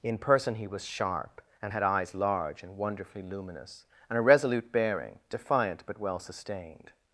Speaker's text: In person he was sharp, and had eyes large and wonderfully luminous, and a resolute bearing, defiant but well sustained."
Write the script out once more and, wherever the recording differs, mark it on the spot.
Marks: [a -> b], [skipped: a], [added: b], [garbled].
In person he was sharp, and had eyes large and wonderfully luminous, and a resolute bearing, defiant but well sustained."